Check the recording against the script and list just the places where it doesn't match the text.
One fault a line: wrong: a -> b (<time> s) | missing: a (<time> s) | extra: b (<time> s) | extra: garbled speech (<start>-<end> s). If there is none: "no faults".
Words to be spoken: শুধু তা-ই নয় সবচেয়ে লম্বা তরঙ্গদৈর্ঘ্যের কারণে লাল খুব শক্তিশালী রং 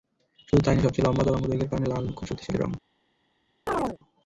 no faults